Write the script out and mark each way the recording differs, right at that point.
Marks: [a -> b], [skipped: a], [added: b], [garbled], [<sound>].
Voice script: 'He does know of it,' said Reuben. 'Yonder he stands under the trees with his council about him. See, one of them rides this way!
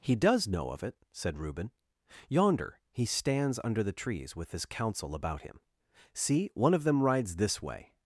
'He does know of it,' said Reuben. 'Yonder he stands under the trees with his council about him. See, one of them rides this way!